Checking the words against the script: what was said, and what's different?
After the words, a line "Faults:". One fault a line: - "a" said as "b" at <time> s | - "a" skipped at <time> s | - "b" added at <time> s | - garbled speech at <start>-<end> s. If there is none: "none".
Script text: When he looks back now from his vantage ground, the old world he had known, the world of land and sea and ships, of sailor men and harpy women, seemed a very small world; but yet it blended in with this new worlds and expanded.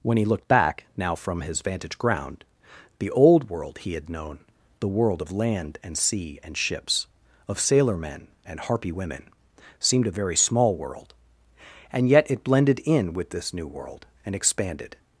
When he looked back now from his vantage ground, the old world he had known, the world of land and sea and ships, of sailor men and harpy women, seemed a very small world; and yet it blended in with this new world and expanded.
Faults:
- "looks" said as "looked" at 0.2 s
- "but" said as "and" at 11.9 s
- "worlds" said as "world" at 13.7 s